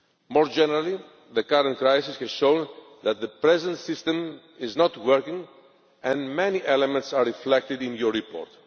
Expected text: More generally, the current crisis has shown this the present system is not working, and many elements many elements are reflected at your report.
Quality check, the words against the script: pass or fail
fail